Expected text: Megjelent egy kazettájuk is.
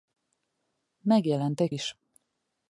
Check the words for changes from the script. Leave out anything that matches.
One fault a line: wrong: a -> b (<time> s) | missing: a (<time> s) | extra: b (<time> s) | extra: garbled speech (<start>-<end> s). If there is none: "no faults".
missing: kazettájuk (1.7 s)